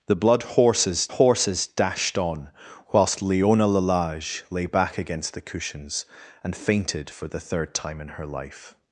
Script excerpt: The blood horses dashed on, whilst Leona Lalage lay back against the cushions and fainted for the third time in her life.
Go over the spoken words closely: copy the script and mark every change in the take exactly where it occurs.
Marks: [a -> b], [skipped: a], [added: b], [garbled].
The blood horses [added: horses] dashed on, whilst Leona Lalage lay back against the cushions and fainted for the third time in her life.